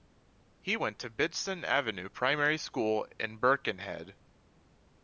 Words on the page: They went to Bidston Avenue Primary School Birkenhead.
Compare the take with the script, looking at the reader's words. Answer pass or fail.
fail